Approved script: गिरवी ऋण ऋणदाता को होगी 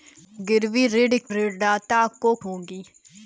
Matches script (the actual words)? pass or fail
pass